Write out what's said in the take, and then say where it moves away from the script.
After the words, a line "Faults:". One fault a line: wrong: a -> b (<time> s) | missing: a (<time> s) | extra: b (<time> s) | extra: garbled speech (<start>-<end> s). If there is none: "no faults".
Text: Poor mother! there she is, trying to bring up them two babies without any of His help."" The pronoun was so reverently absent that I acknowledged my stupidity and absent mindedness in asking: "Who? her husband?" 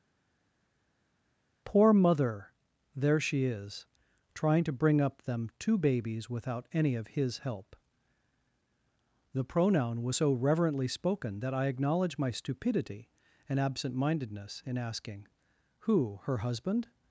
Poor mother! there she is, trying to bring up them two babies without any of His help."" The pronoun was so reverently spoken that I acknowledge my stupidity and absent mindedness in asking: "Who? her husband?"
Faults:
wrong: absent -> spoken (10.9 s)
wrong: acknowledged -> acknowledge (11.6 s)